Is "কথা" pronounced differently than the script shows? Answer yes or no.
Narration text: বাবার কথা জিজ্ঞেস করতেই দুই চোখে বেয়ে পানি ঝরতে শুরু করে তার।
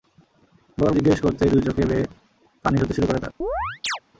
yes